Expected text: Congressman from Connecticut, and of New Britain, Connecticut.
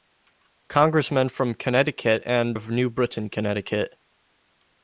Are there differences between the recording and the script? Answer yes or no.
no